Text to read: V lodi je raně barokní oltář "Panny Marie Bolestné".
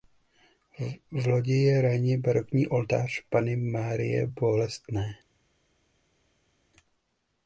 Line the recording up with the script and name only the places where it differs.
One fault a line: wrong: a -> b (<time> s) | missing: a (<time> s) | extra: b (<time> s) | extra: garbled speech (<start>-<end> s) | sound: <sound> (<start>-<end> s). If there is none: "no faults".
no faults